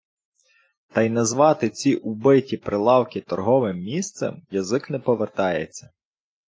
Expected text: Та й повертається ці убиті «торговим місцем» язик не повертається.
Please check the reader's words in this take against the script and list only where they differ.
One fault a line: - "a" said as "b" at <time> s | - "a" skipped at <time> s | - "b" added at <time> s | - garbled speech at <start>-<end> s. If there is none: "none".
- "повертається" said as "назвати" at 1.1 s
- "прилавки" added at 2.6 s